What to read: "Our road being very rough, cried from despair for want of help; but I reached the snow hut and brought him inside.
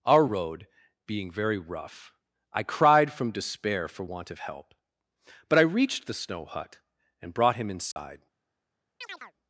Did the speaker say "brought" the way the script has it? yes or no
yes